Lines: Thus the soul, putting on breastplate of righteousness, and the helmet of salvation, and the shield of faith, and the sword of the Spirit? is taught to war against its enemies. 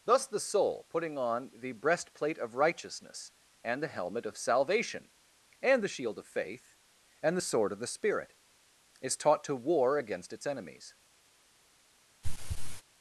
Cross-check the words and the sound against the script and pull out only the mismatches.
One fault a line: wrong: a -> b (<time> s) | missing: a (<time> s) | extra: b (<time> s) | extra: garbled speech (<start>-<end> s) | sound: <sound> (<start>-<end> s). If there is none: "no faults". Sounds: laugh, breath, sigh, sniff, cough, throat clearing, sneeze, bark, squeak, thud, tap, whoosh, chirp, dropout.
extra: the (1.5 s)
sound: throat clearing (12.2-12.8 s)